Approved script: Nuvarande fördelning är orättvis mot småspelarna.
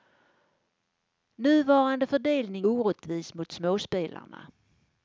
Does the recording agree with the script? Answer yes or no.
no